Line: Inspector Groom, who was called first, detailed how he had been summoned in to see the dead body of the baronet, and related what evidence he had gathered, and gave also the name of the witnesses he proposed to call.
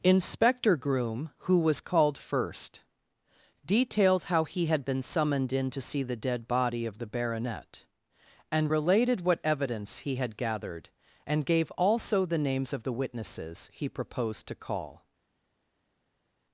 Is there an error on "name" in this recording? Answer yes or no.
yes